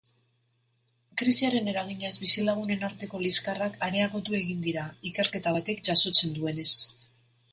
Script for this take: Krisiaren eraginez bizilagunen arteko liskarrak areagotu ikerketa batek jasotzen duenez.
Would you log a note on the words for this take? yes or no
yes